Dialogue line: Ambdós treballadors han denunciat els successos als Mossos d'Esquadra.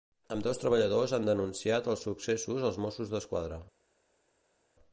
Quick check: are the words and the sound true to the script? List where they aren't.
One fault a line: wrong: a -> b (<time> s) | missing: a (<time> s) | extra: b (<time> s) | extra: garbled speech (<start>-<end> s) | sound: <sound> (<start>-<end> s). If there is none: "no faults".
no faults